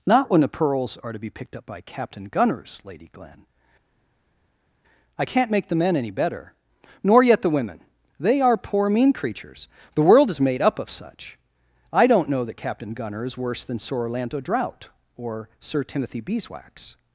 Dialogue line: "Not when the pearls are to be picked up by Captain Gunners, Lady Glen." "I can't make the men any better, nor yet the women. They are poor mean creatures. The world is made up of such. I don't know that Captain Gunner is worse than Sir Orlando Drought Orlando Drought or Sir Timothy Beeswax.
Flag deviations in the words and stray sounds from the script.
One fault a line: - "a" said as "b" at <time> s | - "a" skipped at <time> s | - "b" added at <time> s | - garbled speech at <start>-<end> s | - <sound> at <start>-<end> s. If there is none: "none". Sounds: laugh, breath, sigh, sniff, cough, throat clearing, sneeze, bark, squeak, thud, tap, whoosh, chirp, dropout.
- "Orlando Drought" skipped at 14.9 s